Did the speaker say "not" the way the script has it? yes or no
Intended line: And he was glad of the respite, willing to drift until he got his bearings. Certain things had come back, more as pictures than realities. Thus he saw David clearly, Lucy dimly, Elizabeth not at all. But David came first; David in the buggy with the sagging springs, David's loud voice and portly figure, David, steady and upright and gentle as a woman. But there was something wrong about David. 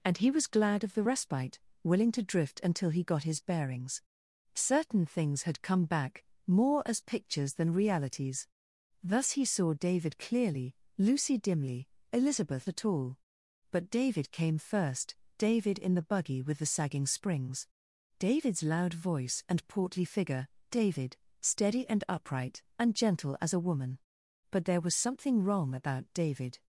no